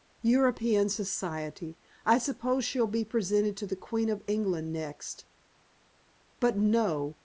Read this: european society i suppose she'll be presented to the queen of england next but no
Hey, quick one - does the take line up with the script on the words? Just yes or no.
yes